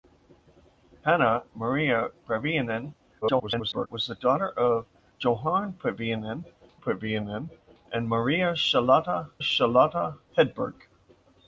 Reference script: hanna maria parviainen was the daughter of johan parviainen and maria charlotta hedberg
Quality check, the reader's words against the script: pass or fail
fail